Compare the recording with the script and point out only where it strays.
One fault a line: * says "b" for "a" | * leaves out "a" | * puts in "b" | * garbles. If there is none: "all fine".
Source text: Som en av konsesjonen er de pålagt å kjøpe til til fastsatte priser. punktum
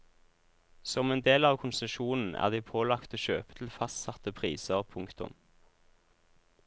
* puts in "del"
* leaves out "til"